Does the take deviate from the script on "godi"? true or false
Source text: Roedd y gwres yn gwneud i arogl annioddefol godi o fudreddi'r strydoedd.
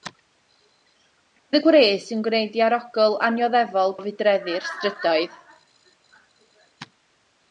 true